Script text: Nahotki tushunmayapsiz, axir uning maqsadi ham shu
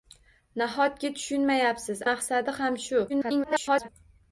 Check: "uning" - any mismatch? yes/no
yes